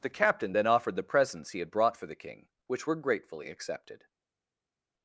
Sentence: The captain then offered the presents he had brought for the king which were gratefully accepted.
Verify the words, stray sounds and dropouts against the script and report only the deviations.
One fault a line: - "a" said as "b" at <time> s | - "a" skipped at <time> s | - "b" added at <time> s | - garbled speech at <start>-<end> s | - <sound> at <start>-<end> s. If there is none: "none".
none